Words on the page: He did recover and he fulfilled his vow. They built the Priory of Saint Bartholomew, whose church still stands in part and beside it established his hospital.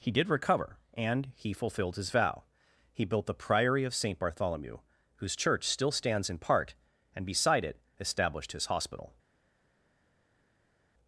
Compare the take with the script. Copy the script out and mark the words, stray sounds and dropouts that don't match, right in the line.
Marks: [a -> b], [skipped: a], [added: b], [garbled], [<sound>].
He did recover and he fulfilled his vow. [They -> He] built the Priory of Saint Bartholomew, whose church still stands in part and beside it established his hospital.